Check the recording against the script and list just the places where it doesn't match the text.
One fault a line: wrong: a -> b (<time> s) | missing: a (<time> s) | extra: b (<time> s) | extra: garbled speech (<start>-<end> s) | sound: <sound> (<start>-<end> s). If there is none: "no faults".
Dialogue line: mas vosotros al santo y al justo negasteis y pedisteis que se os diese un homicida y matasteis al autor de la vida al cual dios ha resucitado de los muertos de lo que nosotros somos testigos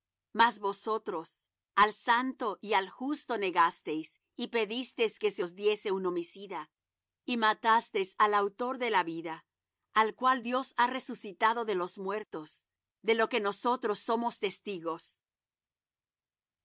no faults